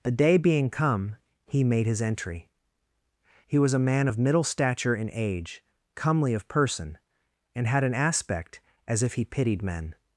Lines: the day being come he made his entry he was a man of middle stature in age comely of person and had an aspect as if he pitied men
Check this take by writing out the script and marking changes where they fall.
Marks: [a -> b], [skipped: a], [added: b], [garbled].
the day being come he made his entry he was a man of middle stature in age comely of person and had an aspect as if he pitied men